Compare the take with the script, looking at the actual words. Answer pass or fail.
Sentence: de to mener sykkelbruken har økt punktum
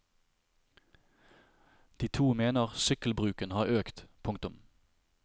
pass